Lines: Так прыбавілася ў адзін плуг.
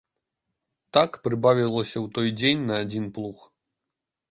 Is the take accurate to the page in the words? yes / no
no